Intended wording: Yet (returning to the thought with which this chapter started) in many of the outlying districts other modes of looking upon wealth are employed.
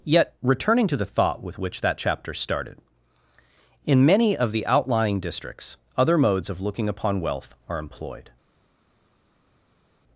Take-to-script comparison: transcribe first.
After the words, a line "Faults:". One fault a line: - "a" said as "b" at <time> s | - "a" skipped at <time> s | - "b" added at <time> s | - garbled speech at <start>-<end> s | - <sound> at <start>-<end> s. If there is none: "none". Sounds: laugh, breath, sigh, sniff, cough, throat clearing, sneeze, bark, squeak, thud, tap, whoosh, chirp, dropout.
Yet (returning to the thought with which that chapter started) in many of the outlying districts other modes of looking upon wealth are employed.
Faults:
- "this" said as "that" at 1.8 s